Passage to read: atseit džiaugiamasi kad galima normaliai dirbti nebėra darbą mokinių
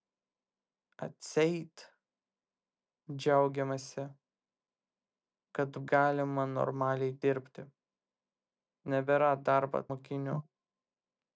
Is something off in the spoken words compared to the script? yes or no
no